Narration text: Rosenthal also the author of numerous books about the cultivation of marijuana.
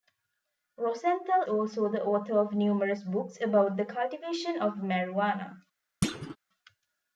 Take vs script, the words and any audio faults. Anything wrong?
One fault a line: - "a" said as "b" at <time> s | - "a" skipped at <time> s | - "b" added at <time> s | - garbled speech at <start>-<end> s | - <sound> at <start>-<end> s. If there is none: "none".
- thud at 6.0-6.4 s